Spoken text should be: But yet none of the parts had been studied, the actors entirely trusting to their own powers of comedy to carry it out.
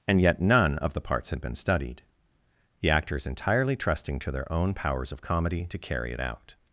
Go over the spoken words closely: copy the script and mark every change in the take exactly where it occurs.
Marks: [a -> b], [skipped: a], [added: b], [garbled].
[But -> And] yet none of the parts had been studied, the actors entirely trusting to their own powers of comedy to carry it out.